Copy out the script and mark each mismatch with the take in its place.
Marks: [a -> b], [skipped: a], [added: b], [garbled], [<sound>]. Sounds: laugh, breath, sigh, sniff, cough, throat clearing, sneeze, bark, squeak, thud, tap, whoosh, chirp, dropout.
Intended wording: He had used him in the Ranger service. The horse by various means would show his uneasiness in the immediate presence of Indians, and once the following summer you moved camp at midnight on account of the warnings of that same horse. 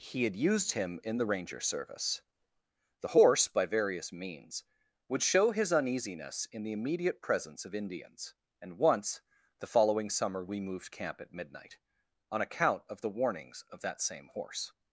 He had used him in the Ranger service. The horse by various means would show his uneasiness in the immediate presence of Indians, and once the following summer [you -> we] moved camp at midnight on account of the warnings of that same horse.